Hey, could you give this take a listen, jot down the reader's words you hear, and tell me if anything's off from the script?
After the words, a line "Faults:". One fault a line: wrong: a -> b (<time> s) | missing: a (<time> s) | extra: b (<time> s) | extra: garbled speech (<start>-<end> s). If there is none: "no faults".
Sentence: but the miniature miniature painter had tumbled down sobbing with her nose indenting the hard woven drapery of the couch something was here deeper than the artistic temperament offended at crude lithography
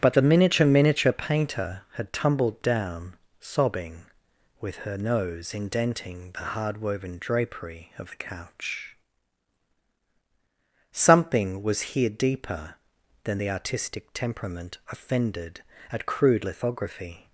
but the miniature miniature painter had tumbled down sobbing with her nose indenting the hard woven drapery of the couch something was here deeper than the artistic temperament offended at crude lithography
Faults:
no faults